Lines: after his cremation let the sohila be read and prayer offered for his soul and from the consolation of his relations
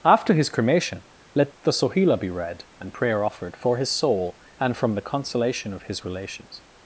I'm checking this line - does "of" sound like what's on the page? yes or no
yes